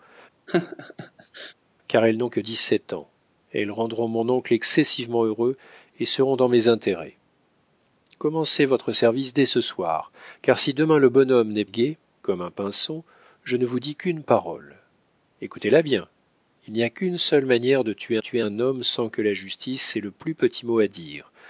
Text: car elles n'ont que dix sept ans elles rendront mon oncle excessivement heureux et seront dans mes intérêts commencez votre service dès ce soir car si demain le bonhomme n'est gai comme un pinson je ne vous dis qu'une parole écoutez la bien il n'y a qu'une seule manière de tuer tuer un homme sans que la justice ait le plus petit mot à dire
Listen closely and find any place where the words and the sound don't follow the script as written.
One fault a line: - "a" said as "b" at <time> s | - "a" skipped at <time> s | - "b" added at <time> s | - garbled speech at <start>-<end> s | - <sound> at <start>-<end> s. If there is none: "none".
- laugh at 0.5-1.5 s